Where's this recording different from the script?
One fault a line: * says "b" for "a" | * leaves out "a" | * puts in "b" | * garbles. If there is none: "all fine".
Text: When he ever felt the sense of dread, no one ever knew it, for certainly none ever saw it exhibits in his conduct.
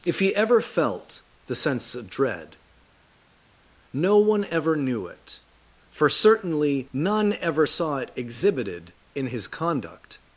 * says "If" for "When"
* says "exhibited" for "exhibits"